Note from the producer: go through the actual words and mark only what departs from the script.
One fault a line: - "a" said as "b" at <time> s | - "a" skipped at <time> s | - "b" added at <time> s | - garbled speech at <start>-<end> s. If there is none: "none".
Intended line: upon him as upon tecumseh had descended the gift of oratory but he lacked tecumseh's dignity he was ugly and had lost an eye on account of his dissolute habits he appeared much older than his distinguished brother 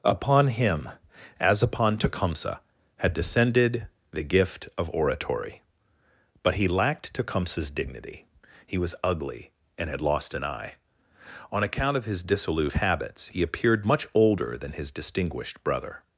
none